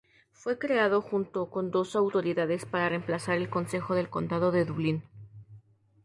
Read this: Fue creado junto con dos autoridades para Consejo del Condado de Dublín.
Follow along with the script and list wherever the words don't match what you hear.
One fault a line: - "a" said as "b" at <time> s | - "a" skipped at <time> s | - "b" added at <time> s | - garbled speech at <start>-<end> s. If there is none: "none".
- "reemplazar el" added at 2.9 s